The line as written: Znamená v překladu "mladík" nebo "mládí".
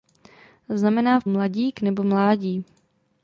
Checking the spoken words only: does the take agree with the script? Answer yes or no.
no